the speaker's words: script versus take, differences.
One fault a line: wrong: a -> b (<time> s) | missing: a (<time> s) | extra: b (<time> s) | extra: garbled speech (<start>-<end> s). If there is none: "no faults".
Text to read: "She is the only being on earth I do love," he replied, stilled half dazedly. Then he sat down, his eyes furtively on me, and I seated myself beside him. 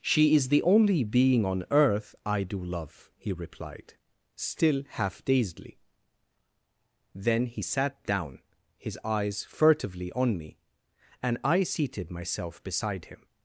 wrong: stilled -> still (4.3 s)